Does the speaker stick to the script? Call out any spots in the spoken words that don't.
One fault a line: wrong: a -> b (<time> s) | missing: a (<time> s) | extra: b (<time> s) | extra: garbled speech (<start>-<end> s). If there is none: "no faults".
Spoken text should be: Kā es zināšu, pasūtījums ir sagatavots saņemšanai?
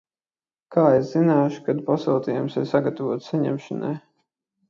extra: kad (1.7 s)